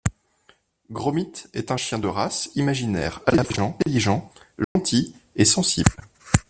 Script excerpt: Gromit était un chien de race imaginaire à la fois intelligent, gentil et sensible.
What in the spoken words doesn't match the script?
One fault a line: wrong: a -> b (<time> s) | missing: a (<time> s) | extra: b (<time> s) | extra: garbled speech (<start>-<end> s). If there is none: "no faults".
wrong: était -> est (1.5 s)